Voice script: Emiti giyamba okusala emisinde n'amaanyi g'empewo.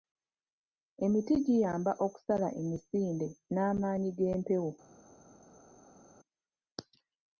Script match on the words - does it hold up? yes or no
yes